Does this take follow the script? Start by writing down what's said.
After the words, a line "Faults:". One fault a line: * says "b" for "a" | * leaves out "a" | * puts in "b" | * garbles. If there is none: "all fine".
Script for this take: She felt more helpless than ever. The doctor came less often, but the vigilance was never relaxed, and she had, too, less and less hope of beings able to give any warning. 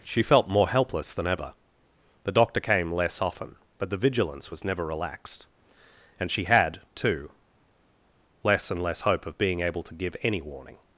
She felt more helpless than ever. The doctor came less often, but the vigilance was never relaxed, and she had, too, less and less hope of being able to give any warning.
Faults:
* says "being" for "beings"